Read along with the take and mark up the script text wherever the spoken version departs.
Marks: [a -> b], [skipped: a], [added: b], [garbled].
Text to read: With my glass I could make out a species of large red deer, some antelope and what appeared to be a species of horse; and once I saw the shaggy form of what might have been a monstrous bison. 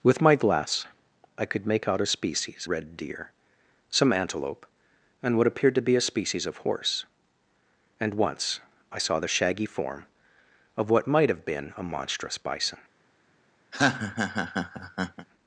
With my glass I could make out a species [skipped: of large] red deer, some antelope and what appeared to be a species of horse; and once I saw the shaggy form of what might have been a monstrous bison.